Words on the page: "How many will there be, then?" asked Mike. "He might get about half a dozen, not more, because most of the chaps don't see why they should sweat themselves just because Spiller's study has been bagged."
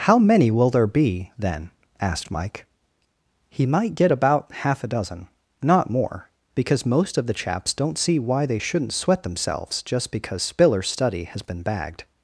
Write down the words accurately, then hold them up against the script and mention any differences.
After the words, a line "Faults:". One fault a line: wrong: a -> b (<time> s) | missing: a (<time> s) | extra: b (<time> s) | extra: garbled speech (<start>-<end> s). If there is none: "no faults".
"How many will there be, then?" asked Mike. "He might get about half a dozen, not more, because most of the chaps don't see why they shouldn't sweat themselves just because Spiller's study has been bagged."
Faults:
wrong: should -> shouldn't (8.6 s)